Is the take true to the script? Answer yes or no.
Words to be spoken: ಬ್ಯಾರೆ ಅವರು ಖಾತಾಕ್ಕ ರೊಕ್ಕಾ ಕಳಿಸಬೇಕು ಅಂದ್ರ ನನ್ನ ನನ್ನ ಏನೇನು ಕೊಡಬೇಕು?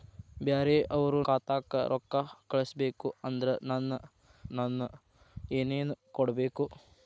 yes